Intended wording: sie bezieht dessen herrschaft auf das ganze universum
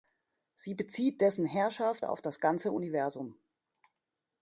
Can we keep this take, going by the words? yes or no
yes